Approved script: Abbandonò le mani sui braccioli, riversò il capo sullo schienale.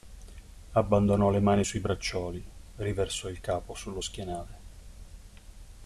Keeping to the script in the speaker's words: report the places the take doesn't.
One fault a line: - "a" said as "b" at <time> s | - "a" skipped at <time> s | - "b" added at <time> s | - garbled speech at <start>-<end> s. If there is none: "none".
none